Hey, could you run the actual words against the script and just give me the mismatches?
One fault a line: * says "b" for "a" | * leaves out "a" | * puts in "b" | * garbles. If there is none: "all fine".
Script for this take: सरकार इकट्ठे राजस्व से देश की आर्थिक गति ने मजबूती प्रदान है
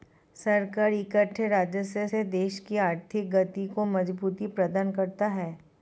* says "को" for "ने"
* puts in "करता"